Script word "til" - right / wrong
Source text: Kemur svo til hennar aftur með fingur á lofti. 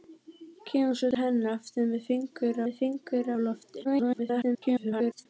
wrong